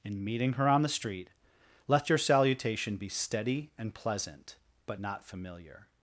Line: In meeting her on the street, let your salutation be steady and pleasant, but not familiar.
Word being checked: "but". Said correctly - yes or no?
yes